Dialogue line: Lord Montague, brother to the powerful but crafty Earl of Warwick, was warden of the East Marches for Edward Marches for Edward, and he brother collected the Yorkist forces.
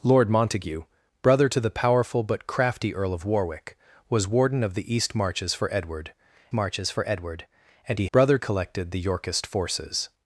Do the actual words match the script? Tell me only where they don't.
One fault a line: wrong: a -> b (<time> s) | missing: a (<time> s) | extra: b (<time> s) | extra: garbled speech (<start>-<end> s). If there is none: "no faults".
no faults